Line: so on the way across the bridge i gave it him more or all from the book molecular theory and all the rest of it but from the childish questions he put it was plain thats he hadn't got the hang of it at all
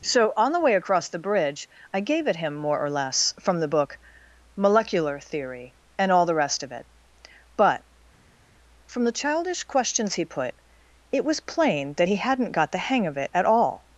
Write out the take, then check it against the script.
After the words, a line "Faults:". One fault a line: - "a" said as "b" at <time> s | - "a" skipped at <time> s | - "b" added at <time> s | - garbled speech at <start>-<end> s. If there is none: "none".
so on the way across the bridge i gave it him more or less from the book molecular theory and all the rest of it but from the childish questions he put it was plain that he hadn't got the hang of it at all
Faults:
- "all" said as "less" at 2.9 s
- "thats" said as "that" at 11.9 s